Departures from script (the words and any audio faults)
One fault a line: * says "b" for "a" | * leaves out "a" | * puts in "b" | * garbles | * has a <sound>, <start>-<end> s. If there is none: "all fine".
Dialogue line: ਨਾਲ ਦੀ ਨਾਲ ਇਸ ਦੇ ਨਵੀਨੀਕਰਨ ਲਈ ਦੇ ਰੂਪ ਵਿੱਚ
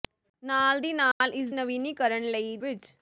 * has a dropout, 1.1-1.2 s
* leaves out "ਦੇ"
* leaves out "ਦੇ ਰੂਪ"